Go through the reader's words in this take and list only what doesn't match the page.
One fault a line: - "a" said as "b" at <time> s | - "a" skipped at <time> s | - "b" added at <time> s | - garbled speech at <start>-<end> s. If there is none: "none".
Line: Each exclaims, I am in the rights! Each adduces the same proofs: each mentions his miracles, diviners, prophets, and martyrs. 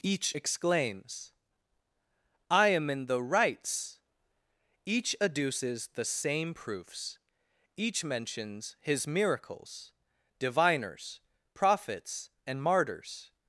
none